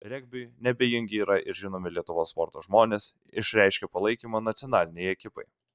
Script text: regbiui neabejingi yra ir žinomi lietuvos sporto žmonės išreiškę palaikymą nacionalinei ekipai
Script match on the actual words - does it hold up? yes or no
yes